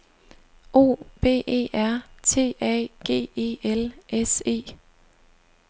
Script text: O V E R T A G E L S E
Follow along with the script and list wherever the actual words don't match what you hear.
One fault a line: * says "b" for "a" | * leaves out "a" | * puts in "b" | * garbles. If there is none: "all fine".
all fine